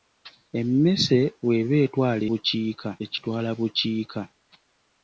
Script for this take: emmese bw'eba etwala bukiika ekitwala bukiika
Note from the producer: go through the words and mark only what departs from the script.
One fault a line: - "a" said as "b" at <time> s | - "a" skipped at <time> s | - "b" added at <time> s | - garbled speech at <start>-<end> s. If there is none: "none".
none